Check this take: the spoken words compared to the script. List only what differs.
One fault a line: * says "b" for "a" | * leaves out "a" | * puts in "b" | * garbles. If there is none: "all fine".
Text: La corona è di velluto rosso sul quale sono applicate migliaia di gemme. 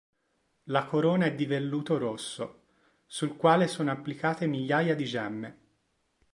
all fine